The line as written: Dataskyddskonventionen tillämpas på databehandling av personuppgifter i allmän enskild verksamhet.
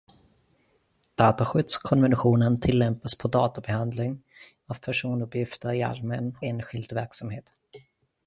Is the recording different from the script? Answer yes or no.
no